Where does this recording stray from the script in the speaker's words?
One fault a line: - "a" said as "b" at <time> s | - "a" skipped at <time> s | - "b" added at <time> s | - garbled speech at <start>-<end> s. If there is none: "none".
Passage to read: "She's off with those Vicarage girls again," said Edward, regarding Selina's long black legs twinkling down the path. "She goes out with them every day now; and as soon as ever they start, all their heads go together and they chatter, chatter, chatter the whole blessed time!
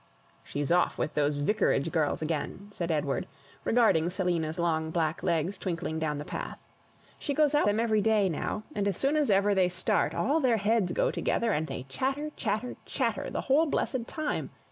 - "with" skipped at 7.7 s